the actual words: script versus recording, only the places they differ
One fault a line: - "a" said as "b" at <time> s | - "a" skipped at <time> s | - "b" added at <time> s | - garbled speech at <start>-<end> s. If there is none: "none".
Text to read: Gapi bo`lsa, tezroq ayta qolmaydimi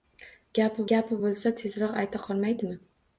- "gapi" added at 0.9 s